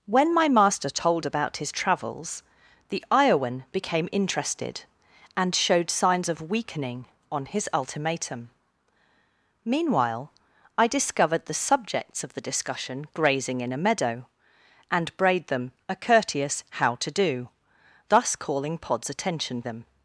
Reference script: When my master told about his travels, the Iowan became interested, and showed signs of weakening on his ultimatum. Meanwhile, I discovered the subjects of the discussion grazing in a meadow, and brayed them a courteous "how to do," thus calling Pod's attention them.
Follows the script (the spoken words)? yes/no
yes